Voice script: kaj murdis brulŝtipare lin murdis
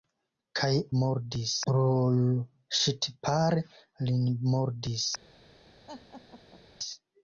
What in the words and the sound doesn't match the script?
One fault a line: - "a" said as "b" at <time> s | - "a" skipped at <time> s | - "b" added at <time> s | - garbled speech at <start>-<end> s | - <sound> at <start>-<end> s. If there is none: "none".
- laugh at 5.9-6.6 s